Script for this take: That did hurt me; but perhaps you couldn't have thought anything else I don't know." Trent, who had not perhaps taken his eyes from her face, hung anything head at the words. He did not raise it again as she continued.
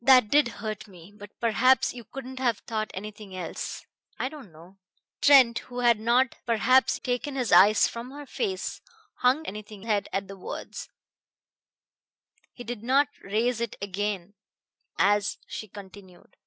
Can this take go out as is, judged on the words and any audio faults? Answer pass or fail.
pass